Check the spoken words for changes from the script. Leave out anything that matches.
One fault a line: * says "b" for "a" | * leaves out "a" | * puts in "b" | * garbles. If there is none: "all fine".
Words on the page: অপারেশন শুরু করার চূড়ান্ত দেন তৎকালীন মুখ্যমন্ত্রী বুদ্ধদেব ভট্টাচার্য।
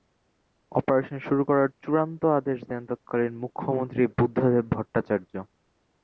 * puts in "আদেশ"